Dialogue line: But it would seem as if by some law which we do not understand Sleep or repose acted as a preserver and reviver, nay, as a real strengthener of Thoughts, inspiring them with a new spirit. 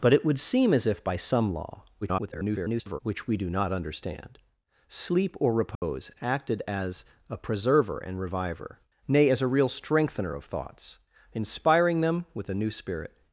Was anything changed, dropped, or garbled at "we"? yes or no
no